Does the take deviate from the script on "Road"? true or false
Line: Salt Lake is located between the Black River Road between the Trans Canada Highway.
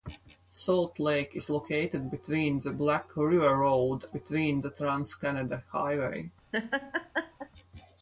false